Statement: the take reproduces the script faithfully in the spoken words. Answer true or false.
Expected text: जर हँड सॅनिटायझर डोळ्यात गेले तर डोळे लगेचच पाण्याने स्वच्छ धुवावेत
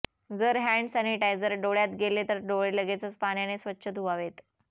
true